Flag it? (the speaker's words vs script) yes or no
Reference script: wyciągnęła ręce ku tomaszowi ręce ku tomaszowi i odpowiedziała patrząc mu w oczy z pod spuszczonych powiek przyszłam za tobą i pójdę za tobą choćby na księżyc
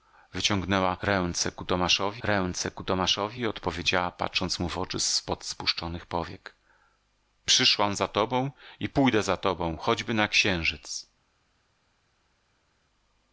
no